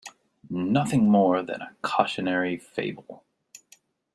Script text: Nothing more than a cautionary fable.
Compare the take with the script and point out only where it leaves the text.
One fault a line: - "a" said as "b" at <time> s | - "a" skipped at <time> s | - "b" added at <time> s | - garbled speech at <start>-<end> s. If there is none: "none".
none